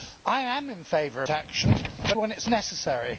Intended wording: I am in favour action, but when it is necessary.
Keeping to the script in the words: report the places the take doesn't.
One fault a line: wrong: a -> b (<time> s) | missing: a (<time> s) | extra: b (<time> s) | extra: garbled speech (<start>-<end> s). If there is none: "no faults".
no faults